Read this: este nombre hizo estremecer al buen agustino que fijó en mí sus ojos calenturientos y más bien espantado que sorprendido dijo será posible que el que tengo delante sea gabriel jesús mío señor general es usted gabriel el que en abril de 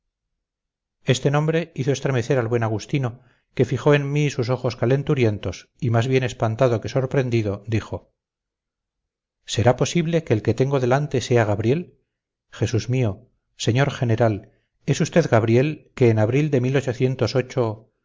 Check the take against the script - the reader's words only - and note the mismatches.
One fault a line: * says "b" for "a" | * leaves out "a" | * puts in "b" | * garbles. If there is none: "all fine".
* leaves out "el"